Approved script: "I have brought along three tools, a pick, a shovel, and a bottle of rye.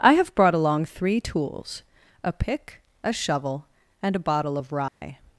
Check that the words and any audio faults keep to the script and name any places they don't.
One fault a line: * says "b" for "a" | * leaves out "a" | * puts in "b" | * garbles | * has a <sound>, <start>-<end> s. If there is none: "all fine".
* has a dropout, 4.9-5.0 s